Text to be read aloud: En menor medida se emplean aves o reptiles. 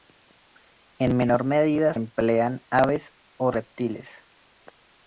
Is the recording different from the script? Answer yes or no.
yes